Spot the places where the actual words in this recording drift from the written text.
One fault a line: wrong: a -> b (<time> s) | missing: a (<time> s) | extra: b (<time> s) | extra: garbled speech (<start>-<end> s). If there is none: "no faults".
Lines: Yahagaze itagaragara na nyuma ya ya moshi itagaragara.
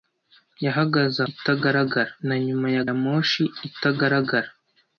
no faults